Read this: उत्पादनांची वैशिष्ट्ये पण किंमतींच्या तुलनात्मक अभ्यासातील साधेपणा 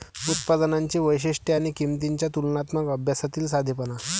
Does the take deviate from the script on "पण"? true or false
true